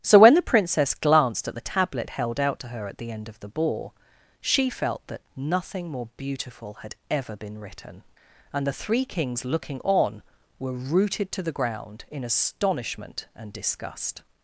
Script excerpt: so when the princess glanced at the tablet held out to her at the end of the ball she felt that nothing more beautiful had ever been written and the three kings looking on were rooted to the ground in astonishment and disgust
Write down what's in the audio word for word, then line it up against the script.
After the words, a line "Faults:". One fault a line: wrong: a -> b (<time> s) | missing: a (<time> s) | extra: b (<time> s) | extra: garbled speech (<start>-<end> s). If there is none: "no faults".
so when the princess glanced at the tablet held out to her at the end of the ball she felt that nothing more beautiful had ever been written and the three kings looking on were rooted to the ground in astonishment and disgust
Faults:
no faults